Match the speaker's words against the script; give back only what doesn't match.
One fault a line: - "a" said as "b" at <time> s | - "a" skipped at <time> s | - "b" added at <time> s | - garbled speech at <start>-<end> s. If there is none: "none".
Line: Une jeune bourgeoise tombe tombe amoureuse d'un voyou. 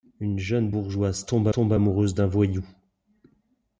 none